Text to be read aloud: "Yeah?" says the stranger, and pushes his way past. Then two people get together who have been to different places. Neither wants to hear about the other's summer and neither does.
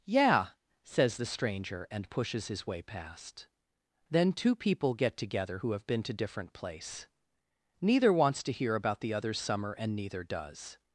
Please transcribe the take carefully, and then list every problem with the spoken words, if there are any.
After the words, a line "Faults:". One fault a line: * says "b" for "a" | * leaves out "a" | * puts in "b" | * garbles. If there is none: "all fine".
"Yeah?" says the stranger, and pushes his way past. Then two people get together who have been to different place. Neither wants to hear about the other's summer and neither does.
Faults:
* says "place" for "places"